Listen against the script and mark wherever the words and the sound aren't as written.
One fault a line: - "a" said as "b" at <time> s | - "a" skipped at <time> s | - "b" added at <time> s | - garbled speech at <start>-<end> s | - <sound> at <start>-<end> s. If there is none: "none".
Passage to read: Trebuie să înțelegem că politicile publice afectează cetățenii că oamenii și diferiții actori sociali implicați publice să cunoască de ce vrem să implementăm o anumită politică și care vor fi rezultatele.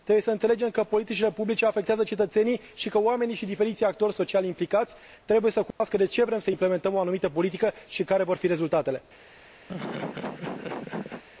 - "și" added at 2.7 s
- "publice" said as "trebuie" at 5.2 s
- dropout at 5.7-5.8 s
- laugh at 9.7-11.2 s